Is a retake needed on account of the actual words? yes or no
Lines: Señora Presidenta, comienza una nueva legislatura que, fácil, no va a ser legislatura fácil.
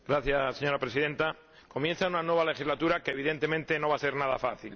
yes